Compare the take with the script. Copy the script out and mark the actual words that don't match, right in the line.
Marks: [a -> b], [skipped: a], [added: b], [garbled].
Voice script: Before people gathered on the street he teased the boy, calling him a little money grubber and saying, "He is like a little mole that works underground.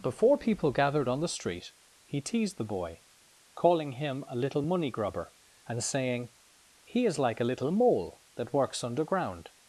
Before people gathered on the street he teased the boy, calling him a little money grubber and saying, "He is like a little mole that works underground.